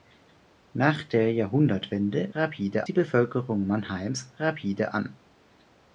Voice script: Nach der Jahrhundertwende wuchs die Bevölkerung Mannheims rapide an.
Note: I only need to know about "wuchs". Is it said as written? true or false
false